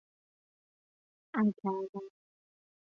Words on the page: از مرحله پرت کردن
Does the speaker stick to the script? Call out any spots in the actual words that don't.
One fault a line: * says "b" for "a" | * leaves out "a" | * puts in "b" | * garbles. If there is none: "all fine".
* leaves out "مرحله پرت"